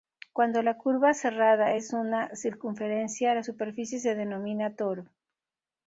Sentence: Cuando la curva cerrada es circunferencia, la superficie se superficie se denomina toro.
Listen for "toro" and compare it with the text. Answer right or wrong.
right